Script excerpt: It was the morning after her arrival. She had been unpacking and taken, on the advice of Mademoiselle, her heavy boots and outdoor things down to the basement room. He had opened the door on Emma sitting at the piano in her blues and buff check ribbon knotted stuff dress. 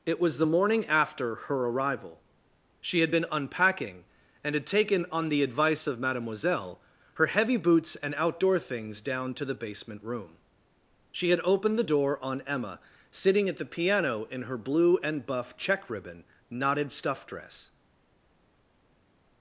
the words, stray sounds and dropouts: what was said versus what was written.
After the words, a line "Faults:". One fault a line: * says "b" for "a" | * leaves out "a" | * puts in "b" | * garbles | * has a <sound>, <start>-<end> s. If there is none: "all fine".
It was the morning after her arrival. She had been unpacking and had taken, on the advice of Mademoiselle, her heavy boots and outdoor things down to the basement room. She had opened the door on Emma sitting at the piano in her blue and buff check ribbon knotted stuff dress.
Faults:
* puts in "had"
* says "She" for "He"
* says "blue" for "blues"